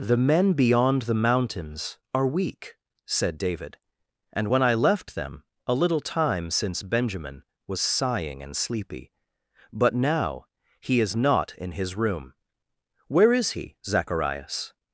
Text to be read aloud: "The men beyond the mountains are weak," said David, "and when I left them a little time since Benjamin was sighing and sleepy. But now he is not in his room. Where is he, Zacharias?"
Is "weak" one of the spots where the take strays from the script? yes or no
no